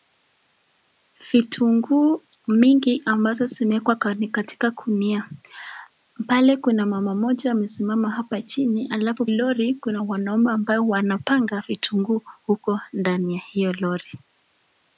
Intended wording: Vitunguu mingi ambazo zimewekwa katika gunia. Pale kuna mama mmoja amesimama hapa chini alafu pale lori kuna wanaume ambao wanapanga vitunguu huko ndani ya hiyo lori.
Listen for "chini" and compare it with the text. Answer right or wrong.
right